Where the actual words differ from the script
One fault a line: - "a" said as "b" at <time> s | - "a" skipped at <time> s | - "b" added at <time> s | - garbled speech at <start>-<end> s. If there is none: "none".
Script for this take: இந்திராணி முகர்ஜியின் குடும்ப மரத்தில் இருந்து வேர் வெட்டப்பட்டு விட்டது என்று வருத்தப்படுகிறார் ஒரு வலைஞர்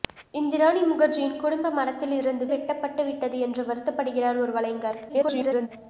- "வேர்" skipped at 2.5 s
- garbled speech at 5.1-5.7 s